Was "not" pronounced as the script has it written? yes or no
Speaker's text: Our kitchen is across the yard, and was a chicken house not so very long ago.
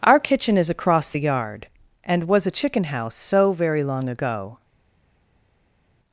no